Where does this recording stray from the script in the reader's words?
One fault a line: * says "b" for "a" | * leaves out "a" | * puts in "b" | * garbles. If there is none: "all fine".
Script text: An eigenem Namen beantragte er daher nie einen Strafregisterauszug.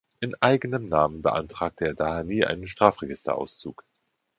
* says "In" for "An"